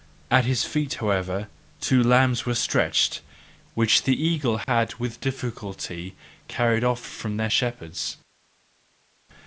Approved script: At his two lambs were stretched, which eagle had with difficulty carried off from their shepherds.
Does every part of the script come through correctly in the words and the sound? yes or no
no